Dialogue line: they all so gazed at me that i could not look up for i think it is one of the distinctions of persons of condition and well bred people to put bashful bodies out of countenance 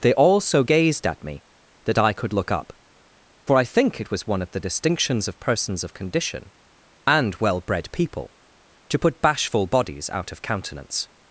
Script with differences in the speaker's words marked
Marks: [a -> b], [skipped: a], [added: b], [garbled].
they all so gazed at me that i could [skipped: not] look up for i think it [is -> was] one of the distinctions of persons of condition and well bred people to put bashful bodies out of countenance